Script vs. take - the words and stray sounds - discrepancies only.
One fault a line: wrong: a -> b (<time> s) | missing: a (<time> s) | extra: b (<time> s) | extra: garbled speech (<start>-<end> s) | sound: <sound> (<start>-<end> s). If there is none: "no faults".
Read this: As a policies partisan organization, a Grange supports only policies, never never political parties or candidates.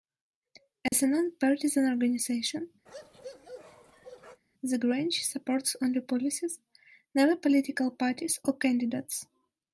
sound: dropout (0.9-0.9 s)
wrong: policies -> non (1.1 s)
sound: bark (2.9-4.4 s)
wrong: a -> the (4.6 s)
missing: never (7.3 s)